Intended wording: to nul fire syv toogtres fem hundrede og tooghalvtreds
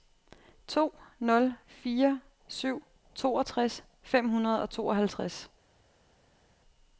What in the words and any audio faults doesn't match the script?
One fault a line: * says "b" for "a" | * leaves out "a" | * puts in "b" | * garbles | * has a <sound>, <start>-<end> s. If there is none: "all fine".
all fine